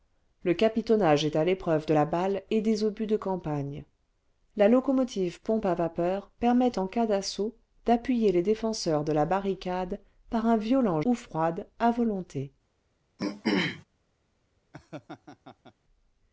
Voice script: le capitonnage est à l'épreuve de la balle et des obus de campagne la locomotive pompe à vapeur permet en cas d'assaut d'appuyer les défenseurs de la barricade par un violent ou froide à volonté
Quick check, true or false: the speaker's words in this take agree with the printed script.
true